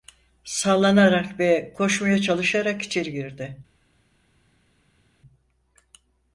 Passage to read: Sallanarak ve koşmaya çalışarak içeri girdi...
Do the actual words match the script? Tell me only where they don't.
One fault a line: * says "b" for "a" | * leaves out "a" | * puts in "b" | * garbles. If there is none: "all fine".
all fine